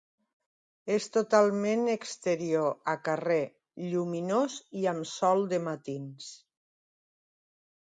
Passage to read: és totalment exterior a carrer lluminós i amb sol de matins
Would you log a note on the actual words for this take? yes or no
no